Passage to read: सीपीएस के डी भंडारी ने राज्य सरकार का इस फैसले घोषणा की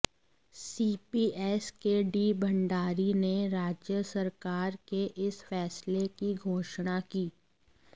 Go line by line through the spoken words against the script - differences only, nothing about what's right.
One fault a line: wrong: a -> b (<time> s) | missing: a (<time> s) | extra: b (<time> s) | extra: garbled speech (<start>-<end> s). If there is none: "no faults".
wrong: का -> के (4.9 s)
extra: की (6.2 s)